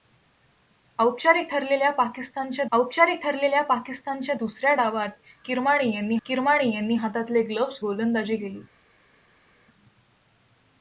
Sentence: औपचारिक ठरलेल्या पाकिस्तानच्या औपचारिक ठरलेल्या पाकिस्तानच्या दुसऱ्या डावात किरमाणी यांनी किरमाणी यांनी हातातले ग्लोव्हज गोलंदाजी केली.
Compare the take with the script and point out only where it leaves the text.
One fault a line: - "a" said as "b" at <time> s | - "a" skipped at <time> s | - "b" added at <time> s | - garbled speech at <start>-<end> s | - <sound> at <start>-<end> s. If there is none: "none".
none